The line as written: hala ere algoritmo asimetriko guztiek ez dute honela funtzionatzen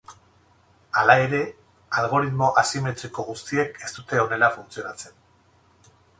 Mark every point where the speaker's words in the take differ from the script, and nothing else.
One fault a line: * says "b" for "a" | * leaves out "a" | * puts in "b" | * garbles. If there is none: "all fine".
all fine